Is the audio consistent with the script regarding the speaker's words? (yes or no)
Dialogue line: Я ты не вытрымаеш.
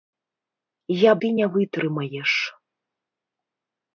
yes